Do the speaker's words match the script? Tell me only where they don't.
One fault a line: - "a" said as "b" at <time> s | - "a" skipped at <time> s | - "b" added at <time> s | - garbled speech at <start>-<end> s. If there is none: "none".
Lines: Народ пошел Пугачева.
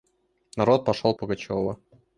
none